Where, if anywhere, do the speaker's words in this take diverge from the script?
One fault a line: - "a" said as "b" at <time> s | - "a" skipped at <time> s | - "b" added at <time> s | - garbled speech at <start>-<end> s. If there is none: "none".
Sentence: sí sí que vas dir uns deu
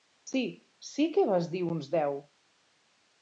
none